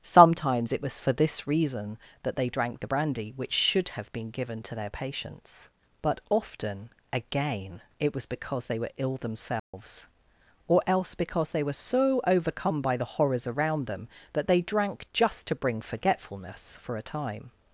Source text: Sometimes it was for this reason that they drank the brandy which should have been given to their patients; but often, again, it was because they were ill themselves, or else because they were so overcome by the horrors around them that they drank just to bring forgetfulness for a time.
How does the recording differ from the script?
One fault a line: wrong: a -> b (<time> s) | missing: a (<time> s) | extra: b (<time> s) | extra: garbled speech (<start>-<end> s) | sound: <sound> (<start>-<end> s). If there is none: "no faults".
sound: dropout (9.6-9.7 s)